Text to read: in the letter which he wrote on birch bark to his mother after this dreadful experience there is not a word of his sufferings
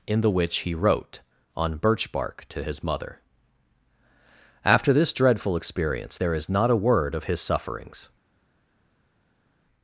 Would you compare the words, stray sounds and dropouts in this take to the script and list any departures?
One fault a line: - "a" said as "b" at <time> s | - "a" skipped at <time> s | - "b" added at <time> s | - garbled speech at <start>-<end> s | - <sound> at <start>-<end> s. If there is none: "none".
- "letter" skipped at 0.3 s